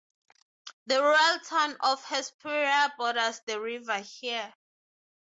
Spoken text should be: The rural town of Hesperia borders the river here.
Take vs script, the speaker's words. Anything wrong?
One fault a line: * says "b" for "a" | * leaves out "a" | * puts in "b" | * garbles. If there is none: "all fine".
all fine